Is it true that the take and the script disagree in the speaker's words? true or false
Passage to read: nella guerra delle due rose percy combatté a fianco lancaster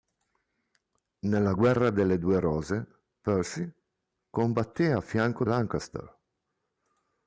false